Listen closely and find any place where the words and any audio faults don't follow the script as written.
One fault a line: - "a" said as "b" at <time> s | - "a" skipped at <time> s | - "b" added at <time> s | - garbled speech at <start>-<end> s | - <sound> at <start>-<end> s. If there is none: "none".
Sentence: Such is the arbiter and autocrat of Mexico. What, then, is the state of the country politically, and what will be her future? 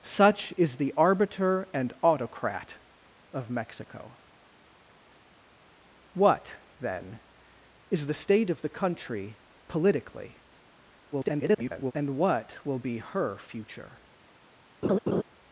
- garbled speech at 11.1-11.9 s
- laugh at 14.8-15.2 s